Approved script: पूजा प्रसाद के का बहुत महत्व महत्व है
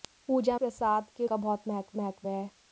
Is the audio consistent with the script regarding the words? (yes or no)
yes